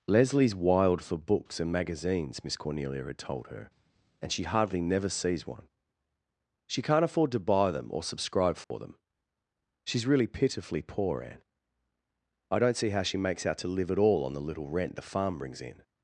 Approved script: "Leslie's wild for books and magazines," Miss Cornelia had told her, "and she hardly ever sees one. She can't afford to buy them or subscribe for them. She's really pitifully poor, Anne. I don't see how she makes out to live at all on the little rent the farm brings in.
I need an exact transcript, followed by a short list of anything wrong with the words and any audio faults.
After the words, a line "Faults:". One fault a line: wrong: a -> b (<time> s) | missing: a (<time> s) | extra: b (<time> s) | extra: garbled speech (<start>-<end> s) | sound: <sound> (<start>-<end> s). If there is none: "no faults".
"Leslie's wild for books and magazines," Miss Cornelia had told her, "and she hardly never sees one. She can't afford to buy them or subscribe for them. She's really pitifully poor, Anne. I don't see how she makes out to live at all on the little rent the farm brings in.
Faults:
wrong: ever -> never (4.8 s)
sound: dropout (8.6-8.7 s)